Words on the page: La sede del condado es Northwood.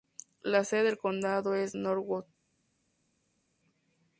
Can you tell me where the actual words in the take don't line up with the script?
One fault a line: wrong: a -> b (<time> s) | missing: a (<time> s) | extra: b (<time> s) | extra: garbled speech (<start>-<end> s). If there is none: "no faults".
no faults